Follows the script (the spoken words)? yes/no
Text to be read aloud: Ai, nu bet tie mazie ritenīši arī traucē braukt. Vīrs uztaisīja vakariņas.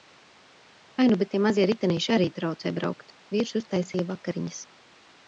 yes